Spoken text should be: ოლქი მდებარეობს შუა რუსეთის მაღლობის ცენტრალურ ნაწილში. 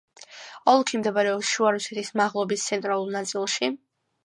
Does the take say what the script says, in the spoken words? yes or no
yes